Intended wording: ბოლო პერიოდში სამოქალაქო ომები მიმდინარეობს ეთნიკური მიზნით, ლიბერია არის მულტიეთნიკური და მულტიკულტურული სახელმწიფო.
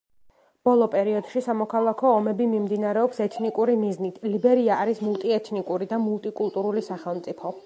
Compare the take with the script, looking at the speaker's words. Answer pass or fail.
pass